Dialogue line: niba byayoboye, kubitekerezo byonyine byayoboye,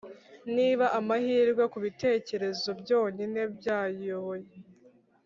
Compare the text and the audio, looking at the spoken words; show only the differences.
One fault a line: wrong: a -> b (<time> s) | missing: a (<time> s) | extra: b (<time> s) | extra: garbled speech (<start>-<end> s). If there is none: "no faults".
wrong: byayoboye -> amahirwe (1.0 s)